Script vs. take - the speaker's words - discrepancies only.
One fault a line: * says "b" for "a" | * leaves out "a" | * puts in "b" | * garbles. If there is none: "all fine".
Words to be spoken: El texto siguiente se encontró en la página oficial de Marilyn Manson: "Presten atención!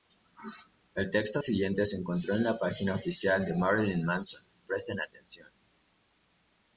all fine